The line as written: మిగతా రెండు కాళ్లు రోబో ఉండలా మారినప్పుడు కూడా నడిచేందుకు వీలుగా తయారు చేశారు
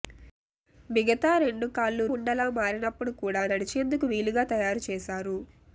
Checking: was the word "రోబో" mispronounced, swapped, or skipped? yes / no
yes